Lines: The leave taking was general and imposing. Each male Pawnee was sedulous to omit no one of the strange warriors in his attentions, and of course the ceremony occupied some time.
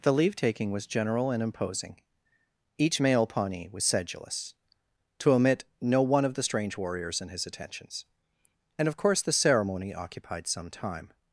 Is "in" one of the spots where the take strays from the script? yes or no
no